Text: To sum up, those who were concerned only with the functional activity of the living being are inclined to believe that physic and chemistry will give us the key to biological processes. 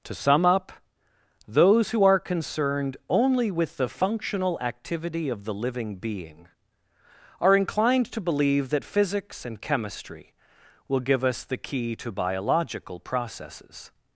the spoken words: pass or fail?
fail